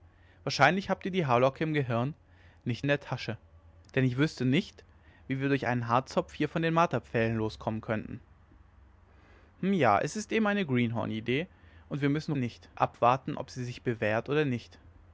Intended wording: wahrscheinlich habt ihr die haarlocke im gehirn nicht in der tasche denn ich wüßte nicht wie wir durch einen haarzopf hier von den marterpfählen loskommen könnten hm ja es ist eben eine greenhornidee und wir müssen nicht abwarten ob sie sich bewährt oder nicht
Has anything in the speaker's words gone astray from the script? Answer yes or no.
no